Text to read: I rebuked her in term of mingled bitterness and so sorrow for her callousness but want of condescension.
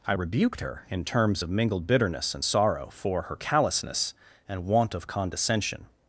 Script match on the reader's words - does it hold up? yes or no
no